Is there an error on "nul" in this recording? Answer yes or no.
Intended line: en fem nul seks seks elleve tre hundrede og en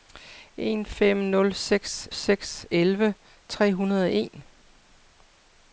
no